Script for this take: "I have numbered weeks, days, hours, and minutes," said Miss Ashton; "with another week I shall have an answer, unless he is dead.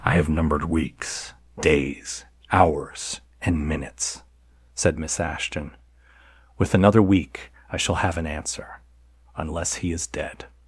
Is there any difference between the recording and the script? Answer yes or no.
no